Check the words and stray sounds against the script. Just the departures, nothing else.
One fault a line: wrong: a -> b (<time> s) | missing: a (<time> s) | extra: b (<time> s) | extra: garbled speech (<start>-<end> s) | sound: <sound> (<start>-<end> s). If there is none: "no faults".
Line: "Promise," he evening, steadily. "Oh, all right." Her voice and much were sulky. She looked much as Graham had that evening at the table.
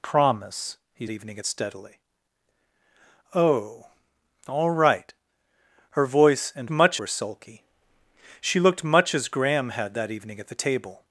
no faults